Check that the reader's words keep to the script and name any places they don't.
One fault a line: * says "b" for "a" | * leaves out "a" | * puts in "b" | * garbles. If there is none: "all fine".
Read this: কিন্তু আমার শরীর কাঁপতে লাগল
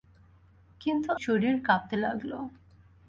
* leaves out "আমার"